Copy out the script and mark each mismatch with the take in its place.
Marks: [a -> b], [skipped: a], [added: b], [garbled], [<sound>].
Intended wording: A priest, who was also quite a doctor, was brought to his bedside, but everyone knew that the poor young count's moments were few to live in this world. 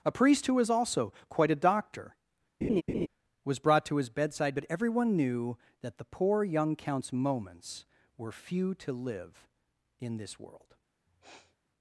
A priest, who was also quite a doctor, [laugh] was brought to his bedside, but everyone knew that the poor young count's moments were few to live in this world. [sniff]